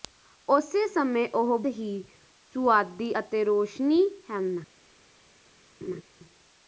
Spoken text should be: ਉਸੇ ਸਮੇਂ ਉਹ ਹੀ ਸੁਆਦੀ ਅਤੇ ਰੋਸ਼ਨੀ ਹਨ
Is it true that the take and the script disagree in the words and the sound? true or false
true